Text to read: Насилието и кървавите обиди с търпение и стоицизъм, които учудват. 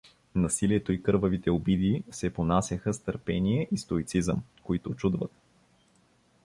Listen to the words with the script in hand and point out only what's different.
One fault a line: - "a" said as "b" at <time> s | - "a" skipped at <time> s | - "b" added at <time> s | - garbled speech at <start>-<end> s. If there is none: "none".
- "се понасяха" added at 2.1 s